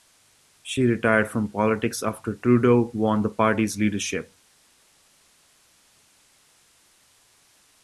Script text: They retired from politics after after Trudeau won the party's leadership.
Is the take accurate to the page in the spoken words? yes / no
no